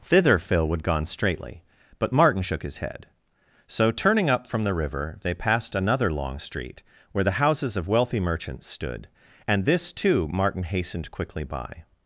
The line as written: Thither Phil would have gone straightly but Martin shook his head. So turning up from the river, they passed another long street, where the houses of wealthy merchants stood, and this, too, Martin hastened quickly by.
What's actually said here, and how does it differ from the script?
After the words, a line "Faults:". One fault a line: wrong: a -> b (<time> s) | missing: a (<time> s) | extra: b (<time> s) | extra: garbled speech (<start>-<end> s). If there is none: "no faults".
Thither Phil would gone straightly but Martin shook his head. So turning up from the river, they passed another long street, where the houses of wealthy merchants stood, and this, too, Martin hastened quickly by.
Faults:
missing: have (0.8 s)